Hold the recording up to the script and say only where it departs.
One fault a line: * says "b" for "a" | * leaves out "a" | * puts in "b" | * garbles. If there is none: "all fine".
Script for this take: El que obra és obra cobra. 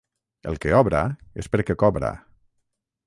* says "perquè" for "obra"